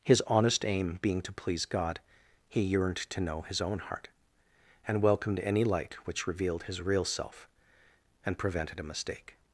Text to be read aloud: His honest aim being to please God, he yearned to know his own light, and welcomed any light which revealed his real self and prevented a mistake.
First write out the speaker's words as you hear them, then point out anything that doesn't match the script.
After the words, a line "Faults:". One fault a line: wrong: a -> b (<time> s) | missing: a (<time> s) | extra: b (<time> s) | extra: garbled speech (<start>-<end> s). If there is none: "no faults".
His honest aim being to please God, he yearned to know his own heart, and welcomed any light which revealed his real self and prevented a mistake.
Faults:
wrong: light -> heart (3.8 s)